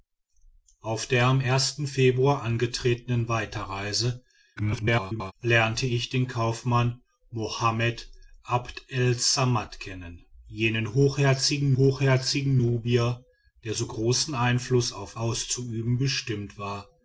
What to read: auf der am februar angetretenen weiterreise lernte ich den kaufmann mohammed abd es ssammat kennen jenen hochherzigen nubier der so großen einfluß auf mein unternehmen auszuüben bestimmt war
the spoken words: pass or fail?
fail